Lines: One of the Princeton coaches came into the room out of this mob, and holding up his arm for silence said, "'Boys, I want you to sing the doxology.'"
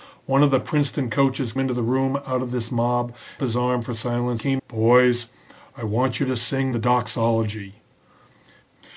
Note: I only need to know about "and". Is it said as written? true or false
false